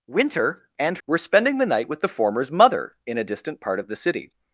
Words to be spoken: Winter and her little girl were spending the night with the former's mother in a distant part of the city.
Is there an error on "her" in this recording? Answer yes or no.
yes